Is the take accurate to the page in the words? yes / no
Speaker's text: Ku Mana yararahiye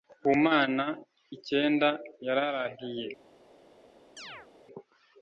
no